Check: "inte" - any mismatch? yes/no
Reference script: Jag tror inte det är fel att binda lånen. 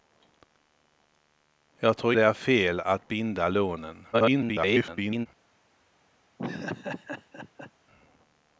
yes